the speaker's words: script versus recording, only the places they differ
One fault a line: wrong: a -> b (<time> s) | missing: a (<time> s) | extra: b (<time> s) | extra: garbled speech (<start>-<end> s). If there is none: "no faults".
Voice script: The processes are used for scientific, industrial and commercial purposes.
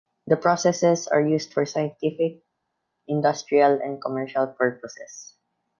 no faults